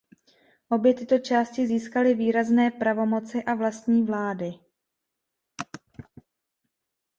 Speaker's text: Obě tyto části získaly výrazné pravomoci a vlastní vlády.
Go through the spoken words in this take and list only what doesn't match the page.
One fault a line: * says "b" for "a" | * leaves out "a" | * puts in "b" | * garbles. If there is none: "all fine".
all fine